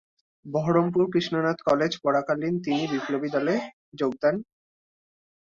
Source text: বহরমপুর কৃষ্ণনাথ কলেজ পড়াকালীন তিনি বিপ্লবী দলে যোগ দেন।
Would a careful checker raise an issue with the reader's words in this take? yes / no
no